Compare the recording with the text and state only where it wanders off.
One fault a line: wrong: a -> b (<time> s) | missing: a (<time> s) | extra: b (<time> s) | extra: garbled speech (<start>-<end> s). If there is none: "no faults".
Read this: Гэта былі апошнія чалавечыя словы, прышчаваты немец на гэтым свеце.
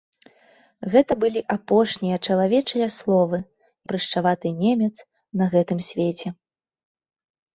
no faults